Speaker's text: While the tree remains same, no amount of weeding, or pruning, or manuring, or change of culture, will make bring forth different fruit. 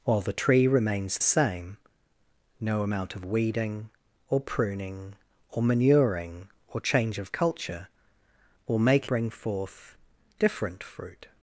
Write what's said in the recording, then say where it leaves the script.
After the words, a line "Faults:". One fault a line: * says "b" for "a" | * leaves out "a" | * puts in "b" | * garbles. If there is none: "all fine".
While the tree remains same, no amount of weeding, or pruning, or manuring, or change of culture, will make bring forth different fruit.
Faults:
all fine